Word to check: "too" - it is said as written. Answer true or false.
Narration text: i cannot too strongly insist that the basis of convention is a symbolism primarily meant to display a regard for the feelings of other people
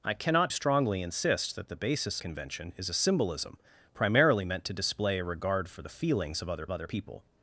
false